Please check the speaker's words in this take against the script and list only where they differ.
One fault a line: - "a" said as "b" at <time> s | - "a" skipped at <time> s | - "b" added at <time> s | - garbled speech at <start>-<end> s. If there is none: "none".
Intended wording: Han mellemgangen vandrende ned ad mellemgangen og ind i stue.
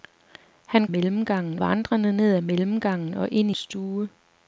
none